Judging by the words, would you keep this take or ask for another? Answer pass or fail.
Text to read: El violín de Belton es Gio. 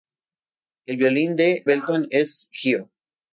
pass